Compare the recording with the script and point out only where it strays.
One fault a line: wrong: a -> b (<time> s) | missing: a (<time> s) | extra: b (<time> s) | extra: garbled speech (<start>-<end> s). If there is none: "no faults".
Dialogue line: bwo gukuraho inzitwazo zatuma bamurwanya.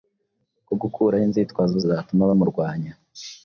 no faults